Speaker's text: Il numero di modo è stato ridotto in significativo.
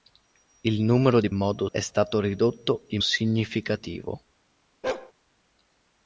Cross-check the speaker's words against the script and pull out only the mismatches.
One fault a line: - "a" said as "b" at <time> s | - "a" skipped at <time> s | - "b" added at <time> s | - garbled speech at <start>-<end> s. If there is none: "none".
none